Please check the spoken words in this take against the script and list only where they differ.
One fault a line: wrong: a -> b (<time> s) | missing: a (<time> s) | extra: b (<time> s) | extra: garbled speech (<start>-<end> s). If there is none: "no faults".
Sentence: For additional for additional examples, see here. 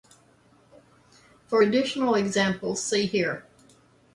missing: for additional (2.1 s)